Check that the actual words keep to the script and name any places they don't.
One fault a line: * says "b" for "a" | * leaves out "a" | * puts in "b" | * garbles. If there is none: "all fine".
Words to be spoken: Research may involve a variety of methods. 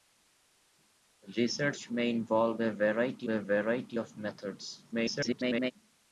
* puts in "a variety"
* garbles